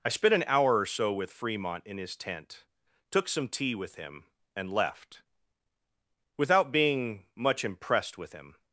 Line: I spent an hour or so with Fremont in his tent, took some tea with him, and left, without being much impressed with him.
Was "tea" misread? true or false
false